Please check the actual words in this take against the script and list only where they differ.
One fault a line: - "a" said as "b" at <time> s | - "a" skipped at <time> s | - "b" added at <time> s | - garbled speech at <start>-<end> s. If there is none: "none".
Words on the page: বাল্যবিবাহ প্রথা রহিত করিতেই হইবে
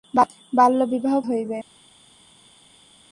- "প্রথা রহিত করিতেই" skipped at 1.1 s